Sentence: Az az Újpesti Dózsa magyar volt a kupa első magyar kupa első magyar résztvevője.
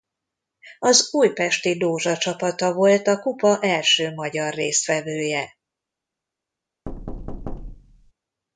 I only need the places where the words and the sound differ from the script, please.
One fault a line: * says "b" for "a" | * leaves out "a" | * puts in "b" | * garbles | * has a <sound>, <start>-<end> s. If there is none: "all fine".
* leaves out "az"
* says "csapata" for "magyar"
* leaves out "kupa első magyar"
* has a thud, 6.9-8.1 s